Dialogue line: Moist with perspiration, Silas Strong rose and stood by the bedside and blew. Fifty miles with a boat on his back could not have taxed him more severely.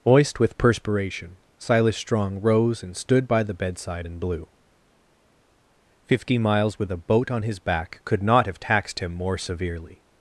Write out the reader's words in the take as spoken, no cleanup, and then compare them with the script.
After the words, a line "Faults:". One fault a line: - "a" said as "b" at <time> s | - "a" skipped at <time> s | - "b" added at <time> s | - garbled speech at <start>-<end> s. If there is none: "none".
Moist with perspiration, Silas Strong rose and stood by the bedside and blew. Fifty miles with a boat on his back could not have taxed him more severely.
Faults:
none